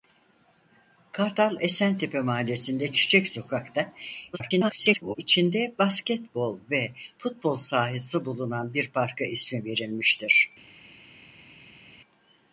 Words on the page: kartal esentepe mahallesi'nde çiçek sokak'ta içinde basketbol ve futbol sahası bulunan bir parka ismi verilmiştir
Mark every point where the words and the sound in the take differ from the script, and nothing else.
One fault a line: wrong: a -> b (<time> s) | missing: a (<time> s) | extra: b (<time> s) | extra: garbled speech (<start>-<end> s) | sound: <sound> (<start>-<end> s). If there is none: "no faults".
extra: garbled speech (4.3-5.2 s)